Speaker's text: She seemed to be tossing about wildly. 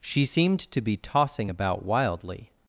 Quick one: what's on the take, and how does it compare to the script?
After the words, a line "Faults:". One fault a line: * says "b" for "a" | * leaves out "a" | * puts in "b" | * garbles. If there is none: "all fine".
She seemed to be tossing about wildly.
Faults:
all fine